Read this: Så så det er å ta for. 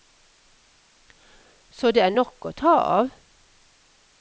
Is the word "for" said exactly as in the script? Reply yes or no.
no